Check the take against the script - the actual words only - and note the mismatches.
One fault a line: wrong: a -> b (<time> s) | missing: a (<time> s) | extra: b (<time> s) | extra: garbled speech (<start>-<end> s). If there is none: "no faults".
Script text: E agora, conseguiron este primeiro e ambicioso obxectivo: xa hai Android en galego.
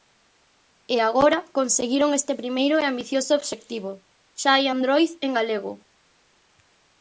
no faults